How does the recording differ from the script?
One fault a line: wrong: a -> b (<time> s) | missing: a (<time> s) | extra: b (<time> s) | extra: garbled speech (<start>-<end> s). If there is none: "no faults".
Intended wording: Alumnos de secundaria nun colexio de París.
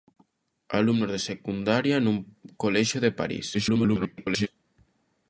extra: garbled speech (3.5-4.5 s)